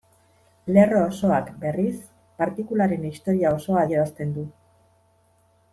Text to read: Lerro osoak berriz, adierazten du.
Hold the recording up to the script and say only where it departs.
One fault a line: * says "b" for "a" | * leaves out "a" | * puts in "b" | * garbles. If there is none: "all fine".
* puts in "partikularen historia osoa"